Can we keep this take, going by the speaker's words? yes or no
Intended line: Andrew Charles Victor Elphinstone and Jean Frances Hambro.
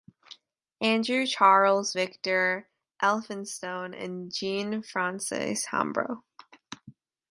yes